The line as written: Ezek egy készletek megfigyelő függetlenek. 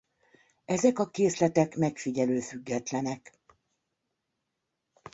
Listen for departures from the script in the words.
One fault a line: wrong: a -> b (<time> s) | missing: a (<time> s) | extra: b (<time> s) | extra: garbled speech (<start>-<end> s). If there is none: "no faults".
wrong: egy -> a (1.0 s)